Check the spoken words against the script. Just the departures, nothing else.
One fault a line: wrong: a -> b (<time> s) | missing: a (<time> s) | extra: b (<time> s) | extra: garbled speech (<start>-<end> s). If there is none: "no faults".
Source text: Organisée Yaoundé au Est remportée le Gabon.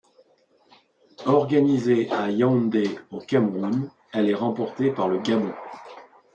extra: à (2.1 s)
extra: Cameroun elle (3.2 s)
extra: par (4.9 s)